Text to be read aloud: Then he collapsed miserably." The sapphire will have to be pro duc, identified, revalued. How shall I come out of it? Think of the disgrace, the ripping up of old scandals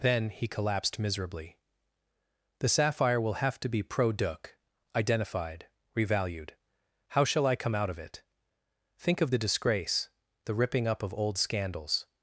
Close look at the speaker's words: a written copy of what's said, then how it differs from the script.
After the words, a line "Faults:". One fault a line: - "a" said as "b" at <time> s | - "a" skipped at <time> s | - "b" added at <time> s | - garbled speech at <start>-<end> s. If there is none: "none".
Then he collapsed miserably." The sapphire will have to be pro duc, identified, revalued. How shall I come out of it? Think of the disgrace, the ripping up of old scandals
Faults:
none